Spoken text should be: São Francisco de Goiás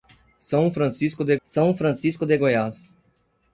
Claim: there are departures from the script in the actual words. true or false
true